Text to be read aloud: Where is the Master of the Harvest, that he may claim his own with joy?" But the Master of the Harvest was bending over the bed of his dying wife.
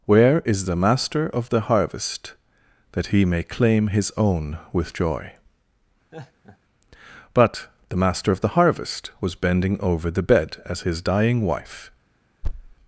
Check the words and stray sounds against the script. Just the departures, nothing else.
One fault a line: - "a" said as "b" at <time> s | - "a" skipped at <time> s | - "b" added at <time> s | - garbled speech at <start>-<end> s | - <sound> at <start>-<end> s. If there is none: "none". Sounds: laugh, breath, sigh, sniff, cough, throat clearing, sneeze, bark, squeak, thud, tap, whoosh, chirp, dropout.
- laugh at 6.1-6.6 s
- "of" said as "as" at 10.6 s
- thud at 12.4-12.7 s